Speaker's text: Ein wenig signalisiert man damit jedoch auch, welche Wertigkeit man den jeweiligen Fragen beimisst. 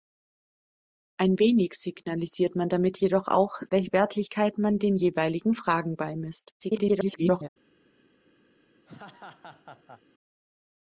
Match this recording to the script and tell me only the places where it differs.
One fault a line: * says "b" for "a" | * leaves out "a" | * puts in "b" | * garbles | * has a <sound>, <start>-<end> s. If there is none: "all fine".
* garbles
* has a laugh, 8.9-10.0 s